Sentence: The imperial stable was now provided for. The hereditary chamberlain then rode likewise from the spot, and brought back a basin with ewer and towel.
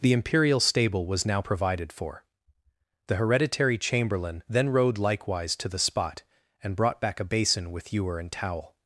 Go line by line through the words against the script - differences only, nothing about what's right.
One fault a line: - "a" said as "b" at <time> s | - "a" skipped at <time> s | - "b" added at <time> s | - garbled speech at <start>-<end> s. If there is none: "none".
- "from" said as "to" at 5.6 s